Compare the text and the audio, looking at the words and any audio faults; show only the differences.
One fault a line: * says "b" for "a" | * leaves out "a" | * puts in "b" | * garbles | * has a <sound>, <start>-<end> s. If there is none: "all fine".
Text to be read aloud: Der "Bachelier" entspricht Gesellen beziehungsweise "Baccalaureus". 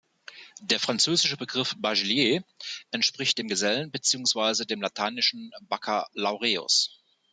* puts in "französische Begriff"
* puts in "dem"
* puts in "dem lateinischen"